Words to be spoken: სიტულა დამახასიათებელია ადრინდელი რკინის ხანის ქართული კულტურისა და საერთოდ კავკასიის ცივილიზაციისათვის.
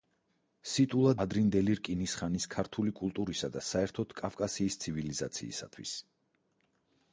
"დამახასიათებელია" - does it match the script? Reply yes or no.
no